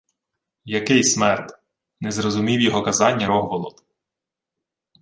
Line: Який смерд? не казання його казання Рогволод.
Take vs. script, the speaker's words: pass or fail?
fail